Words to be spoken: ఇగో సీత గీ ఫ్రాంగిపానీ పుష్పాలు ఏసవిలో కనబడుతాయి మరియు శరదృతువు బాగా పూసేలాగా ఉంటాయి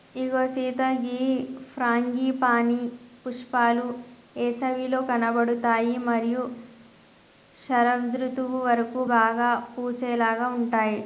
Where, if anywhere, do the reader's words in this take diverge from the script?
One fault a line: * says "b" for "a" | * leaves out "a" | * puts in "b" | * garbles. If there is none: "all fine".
* puts in "వరకు"